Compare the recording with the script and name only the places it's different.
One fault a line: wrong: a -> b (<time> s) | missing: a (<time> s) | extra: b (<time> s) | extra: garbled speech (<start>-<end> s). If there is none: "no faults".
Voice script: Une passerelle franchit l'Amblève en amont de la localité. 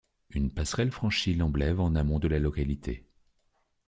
no faults